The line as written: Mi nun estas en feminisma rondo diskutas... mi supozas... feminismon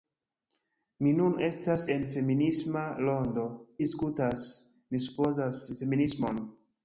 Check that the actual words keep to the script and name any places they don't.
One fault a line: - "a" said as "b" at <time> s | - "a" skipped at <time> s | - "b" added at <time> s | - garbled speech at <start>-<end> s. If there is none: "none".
none